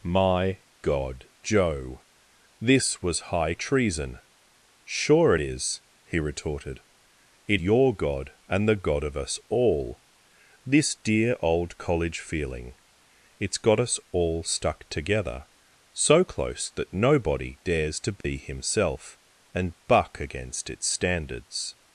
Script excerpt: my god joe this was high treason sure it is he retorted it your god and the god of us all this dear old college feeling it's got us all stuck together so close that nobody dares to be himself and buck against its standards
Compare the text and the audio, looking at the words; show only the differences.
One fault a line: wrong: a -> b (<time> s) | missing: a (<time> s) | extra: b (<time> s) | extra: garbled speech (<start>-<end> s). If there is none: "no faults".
no faults